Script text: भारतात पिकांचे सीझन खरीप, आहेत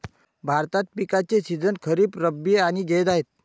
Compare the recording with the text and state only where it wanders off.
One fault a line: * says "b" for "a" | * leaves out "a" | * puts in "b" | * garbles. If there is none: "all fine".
* puts in "रब्बी आणि जैद"